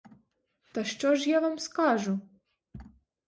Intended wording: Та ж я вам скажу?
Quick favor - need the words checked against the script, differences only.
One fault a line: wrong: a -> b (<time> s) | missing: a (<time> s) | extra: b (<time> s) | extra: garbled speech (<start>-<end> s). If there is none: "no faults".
extra: що (0.8 s)